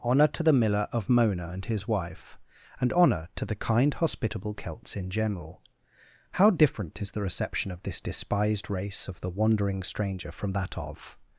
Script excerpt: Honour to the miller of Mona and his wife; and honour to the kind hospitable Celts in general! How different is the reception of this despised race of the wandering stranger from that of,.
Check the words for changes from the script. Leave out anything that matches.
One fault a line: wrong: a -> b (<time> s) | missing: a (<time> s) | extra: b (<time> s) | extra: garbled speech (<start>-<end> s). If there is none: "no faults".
no faults